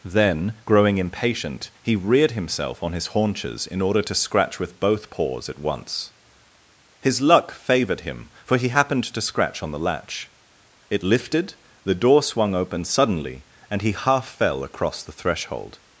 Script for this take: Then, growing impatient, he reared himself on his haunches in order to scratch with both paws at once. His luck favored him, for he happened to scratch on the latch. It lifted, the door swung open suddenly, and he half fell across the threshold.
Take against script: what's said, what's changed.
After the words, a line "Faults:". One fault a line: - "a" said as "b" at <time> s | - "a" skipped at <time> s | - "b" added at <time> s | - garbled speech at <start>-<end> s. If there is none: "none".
Then, growing impatient, he reared himself on his haunches in order to scratch with both paws at once. His luck favored him, for he happened to scratch on the latch. It lifted, the door swung open suddenly, and he half fell across the threshold.
Faults:
none